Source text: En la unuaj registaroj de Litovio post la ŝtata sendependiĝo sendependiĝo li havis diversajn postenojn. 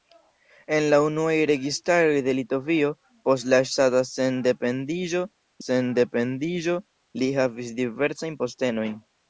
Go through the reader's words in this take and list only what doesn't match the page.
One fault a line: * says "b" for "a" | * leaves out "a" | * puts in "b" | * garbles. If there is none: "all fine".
all fine